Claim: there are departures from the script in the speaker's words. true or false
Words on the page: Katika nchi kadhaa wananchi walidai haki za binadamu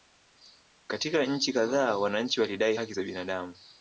false